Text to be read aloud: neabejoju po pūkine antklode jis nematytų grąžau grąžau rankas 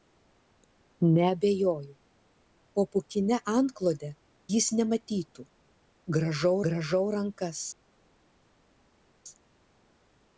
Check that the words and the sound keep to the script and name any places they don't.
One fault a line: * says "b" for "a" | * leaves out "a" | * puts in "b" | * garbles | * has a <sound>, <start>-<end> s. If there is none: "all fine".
all fine